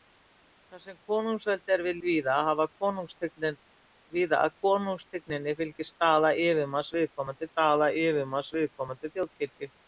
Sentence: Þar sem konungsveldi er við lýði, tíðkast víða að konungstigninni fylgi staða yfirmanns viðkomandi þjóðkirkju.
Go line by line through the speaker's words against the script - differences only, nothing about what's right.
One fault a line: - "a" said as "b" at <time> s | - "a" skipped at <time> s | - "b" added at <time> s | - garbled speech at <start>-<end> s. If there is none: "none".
- "lýði tíðkast" skipped at 2.0 s
- "staða yfirmanns viðkomandi" added at 7.5 s